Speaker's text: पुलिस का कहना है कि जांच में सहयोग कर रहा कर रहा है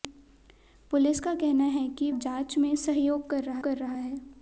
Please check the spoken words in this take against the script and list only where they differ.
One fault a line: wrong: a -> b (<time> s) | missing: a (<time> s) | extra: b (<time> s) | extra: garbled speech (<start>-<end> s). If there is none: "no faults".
no faults